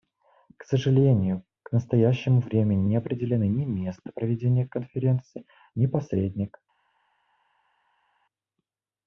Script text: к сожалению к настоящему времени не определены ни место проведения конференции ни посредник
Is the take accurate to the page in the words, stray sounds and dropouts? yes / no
yes